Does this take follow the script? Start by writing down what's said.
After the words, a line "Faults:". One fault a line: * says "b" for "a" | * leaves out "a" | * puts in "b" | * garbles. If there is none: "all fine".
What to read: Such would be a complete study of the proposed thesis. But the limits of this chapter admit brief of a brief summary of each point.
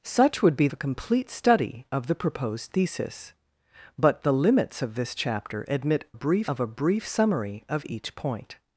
Such would be a complete study of the proposed thesis. But the limits of this chapter admit brief of a brief summary of each point.
Faults:
all fine